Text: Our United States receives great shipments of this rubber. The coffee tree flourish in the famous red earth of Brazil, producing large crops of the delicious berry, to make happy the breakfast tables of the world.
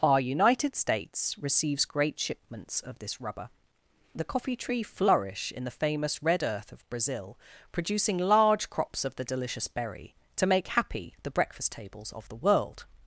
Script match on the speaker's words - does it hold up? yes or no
yes